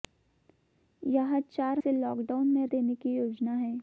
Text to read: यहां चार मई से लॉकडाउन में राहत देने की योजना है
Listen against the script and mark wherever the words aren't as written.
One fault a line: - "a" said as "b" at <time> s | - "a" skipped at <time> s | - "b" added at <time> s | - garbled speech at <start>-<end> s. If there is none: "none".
- "मई" skipped at 1.8 s
- "राहत" skipped at 2.7 s